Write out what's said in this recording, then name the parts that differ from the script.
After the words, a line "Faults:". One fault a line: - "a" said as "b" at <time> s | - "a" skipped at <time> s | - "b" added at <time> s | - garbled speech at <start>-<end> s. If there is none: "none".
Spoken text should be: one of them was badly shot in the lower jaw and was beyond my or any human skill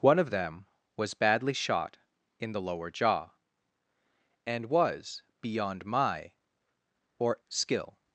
one of them was badly shot in the lower jaw and was beyond my or skill
Faults:
- "any human" skipped at 7.4 s